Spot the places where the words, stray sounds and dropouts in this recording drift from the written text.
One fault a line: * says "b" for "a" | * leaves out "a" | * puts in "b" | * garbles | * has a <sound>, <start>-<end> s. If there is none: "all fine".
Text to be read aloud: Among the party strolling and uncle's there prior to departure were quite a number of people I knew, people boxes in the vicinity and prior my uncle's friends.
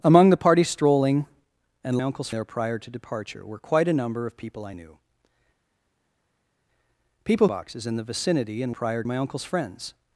all fine